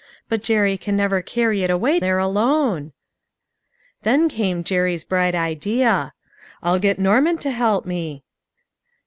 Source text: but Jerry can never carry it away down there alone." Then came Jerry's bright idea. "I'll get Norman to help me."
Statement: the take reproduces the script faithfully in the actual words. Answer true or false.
false